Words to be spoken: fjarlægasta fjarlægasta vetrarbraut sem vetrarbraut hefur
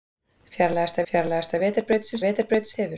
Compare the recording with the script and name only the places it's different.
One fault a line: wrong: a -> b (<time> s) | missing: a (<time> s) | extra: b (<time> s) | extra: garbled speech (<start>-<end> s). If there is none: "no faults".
no faults